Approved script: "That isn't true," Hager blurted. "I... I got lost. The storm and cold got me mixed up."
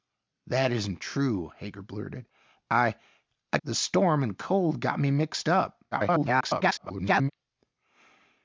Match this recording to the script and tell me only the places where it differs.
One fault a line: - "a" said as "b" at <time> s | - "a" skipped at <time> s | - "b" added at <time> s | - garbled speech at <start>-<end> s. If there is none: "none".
- "got lost" skipped at 3.6 s
- garbled speech at 5.9-7.3 s